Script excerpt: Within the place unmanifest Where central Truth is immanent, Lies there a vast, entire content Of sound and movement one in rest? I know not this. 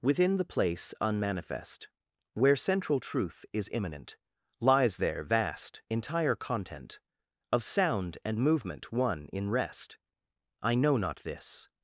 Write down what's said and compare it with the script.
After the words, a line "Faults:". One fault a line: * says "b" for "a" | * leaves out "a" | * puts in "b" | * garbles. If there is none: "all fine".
Within the place unmanifest Where central Truth is immanent, Lies there vast, entire content Of sound and movement one in rest? I know not this.
Faults:
* leaves out "a"